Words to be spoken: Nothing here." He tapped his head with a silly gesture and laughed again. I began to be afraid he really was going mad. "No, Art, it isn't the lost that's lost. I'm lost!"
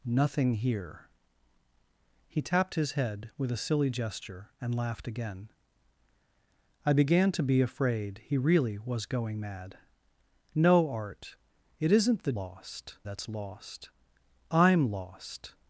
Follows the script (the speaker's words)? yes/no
yes